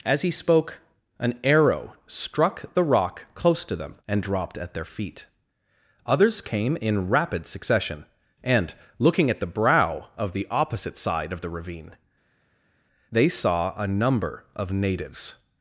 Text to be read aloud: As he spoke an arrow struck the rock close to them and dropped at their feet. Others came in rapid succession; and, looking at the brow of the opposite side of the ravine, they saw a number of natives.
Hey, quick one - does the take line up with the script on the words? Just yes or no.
yes